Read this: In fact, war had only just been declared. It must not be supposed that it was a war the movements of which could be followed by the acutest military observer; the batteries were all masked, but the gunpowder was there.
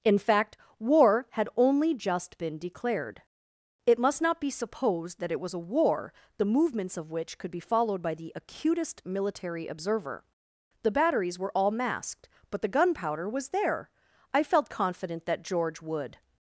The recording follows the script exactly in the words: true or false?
false